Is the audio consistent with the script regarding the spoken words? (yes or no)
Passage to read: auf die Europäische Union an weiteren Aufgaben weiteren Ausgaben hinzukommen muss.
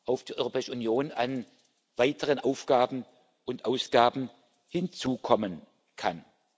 no